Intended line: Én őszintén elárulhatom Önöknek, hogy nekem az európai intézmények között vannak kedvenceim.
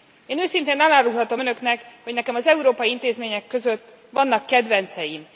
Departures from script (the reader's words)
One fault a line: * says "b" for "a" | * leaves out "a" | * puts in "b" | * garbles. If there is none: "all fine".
all fine